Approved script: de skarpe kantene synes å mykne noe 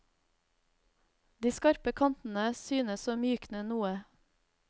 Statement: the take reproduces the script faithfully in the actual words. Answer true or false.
true